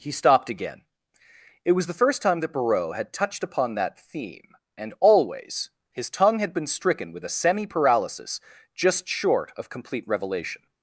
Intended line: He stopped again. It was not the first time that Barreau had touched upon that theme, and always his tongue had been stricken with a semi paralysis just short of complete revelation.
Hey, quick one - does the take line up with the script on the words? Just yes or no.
no